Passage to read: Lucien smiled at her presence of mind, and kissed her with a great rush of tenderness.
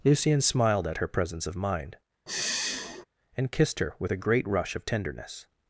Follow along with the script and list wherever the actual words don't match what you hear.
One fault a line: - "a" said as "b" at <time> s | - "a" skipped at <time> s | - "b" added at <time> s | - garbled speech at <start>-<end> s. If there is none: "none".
none